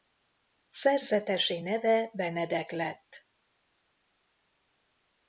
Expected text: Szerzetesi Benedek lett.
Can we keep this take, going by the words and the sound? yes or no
no